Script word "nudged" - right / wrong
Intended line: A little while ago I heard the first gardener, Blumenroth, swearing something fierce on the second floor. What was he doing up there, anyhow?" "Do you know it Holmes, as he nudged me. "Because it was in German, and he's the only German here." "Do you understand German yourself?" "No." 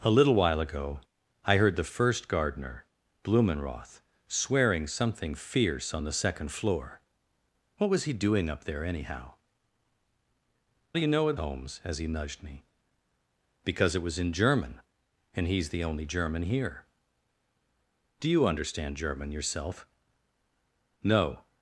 right